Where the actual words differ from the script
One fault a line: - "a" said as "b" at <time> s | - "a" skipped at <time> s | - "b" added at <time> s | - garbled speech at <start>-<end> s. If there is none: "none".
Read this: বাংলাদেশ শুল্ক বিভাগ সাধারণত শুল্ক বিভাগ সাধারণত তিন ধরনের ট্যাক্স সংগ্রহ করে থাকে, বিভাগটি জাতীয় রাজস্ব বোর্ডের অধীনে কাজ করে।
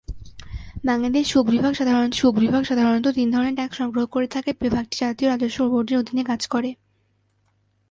none